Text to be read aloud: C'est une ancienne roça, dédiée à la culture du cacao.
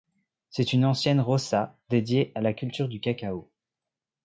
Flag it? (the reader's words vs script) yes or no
no